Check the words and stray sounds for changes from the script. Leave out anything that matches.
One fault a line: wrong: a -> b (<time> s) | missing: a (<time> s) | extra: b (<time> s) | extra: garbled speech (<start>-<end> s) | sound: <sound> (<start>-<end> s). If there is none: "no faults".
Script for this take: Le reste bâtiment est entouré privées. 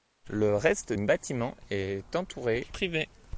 no faults